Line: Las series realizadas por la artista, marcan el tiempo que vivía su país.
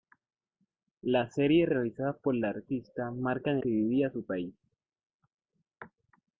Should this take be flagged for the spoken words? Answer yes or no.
yes